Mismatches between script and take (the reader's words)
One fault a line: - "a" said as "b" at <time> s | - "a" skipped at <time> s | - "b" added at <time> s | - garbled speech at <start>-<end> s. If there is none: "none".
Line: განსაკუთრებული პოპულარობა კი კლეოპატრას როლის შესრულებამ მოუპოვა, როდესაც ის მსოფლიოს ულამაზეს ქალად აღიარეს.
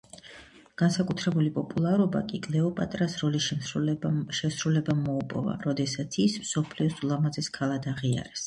none